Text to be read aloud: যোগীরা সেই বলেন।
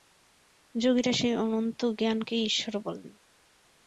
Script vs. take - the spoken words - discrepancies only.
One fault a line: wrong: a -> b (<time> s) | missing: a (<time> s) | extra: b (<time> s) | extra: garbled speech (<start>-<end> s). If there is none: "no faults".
extra: অনন্ত জ্ঞানকেই ঈশ্বর (1.4 s)